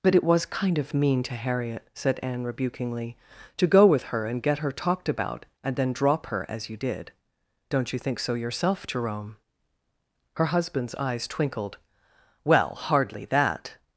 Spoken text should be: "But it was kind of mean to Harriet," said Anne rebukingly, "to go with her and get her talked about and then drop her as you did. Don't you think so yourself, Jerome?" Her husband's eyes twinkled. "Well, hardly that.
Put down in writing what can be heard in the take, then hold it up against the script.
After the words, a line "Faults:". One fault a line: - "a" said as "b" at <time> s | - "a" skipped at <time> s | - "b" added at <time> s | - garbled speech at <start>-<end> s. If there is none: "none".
"But it was kind of mean to Harriet," said Anne rebukingly, "to go with her and get her talked about and then drop her as you did. Don't you think so yourself, Jerome?" Her husband's eyes twinkled. "Well, hardly that.
Faults:
none